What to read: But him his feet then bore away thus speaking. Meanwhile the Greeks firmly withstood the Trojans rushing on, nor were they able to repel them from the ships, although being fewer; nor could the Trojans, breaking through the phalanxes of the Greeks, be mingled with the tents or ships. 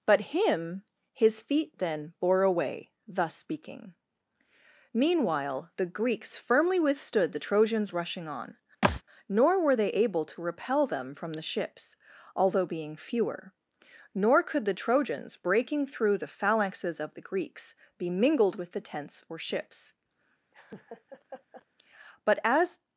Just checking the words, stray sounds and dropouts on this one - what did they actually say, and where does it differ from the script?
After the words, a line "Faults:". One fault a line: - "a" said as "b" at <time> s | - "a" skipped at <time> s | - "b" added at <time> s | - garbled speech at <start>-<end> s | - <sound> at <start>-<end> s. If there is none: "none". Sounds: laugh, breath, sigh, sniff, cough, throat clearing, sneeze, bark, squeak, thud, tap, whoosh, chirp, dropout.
But him his feet then bore away thus speaking. Meanwhile the Greeks firmly withstood the Trojans rushing on, nor were they able to repel them from the ships, although being fewer; nor could the Trojans, breaking through the phalanxes of the Greeks, be mingled with the tents or ships. But as
Faults:
- thud at 8.8-9.0 s
- laugh at 20.5-21.7 s
- "But as" added at 22.2 s